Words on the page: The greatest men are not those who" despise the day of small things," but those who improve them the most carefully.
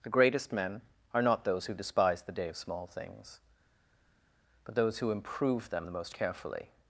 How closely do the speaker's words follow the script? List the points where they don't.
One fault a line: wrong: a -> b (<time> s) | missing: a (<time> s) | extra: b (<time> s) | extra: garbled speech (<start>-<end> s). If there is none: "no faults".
no faults